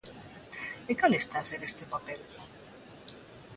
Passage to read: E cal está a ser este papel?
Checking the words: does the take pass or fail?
pass